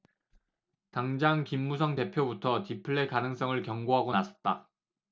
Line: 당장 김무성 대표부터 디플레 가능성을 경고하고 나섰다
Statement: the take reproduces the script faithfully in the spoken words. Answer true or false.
true